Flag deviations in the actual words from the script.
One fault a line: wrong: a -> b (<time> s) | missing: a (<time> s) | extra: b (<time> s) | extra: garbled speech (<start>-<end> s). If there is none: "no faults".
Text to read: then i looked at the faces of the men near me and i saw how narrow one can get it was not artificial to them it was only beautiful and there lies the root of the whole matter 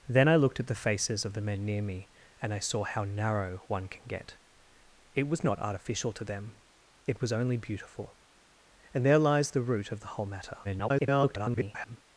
extra: garbled speech (10.6-12.0 s)